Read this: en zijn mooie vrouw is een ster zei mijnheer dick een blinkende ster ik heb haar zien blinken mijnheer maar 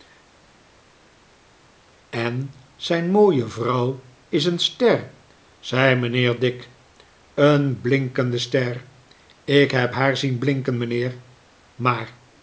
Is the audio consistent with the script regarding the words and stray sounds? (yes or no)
yes